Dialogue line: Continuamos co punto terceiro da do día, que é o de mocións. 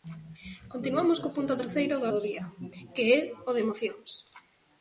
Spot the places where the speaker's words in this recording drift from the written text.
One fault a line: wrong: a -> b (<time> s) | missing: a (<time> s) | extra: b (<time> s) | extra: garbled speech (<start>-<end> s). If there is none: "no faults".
no faults